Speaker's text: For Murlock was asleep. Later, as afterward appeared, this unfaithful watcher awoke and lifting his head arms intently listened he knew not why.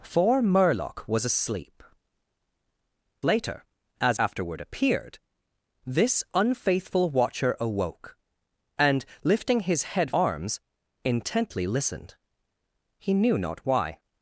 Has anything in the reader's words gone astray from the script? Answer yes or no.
no